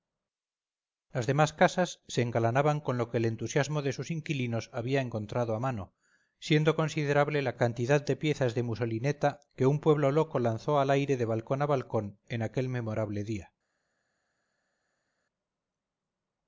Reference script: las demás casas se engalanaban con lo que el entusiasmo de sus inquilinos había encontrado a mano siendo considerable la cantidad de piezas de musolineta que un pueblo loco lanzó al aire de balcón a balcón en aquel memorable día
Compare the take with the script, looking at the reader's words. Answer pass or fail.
pass